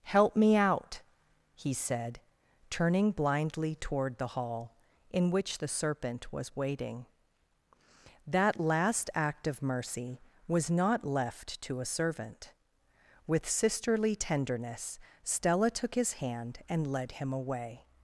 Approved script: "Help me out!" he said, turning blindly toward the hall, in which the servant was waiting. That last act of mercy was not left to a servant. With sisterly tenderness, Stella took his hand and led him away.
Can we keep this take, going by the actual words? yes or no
no